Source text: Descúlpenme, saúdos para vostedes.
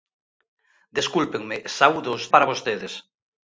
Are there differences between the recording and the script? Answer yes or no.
no